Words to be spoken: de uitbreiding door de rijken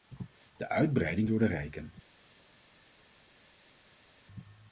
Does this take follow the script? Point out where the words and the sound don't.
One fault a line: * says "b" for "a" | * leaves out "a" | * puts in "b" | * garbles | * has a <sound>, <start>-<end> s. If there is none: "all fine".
all fine